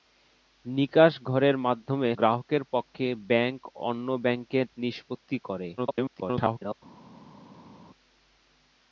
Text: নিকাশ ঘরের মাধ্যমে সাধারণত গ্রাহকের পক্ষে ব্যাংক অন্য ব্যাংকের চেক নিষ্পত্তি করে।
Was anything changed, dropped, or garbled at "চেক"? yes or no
yes